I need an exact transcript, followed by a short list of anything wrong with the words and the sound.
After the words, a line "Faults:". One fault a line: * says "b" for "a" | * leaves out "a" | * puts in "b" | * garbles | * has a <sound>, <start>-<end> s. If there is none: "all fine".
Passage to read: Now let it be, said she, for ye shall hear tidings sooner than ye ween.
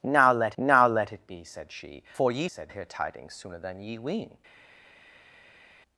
Now let now let it be, said she, for ye said hear tidings sooner than ye ween.
Faults:
* puts in "now let"
* says "said" for "shall"